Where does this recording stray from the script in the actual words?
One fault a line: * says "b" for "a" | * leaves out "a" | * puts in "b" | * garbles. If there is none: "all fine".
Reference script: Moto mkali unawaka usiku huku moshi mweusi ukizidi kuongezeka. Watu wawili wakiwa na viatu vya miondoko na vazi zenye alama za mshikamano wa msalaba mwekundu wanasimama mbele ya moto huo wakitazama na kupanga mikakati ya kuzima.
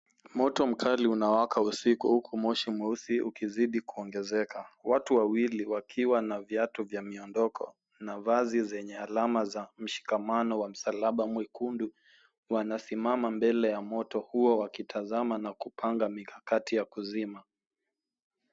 all fine